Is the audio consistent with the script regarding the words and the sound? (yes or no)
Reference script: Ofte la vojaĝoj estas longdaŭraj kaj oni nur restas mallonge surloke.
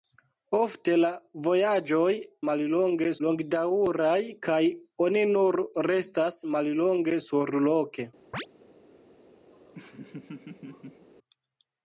no